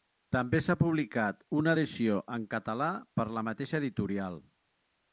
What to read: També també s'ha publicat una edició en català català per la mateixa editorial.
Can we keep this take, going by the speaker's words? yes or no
no